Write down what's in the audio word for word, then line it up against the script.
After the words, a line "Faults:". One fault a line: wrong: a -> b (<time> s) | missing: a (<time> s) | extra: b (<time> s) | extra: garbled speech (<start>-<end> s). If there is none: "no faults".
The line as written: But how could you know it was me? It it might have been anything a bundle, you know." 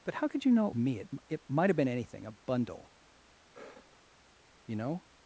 But how could you know it me? It it might have been anything a bundle, you know."
Faults:
missing: was (0.7 s)